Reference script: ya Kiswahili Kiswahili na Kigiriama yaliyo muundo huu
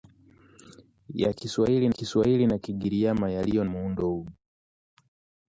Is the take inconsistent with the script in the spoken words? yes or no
no